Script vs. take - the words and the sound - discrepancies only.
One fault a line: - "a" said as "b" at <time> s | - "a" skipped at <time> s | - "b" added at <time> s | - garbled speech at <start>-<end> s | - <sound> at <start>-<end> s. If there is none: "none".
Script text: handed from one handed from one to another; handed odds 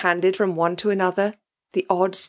- "handed from one" skipped at 0.8 s
- "handed" said as "the" at 1.7 s